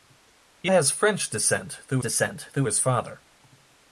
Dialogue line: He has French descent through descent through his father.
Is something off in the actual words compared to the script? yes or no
no